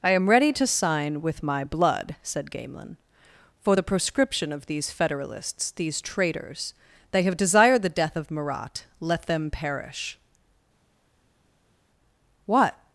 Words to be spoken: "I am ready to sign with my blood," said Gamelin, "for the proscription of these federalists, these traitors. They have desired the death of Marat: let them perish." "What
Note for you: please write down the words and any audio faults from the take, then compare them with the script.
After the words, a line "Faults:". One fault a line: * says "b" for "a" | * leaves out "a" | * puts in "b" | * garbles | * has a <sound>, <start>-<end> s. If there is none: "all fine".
"I am ready to sign with my blood," said Gamelin, "for the proscription of these federalists, these traitors. They have desired the death of Marat: let them perish." "What
Faults:
all fine